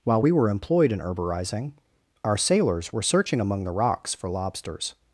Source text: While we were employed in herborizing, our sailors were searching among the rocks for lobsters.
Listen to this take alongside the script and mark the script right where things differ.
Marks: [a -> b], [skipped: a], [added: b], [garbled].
While we were employed in herborizing, our sailors were searching among the rocks for lobsters.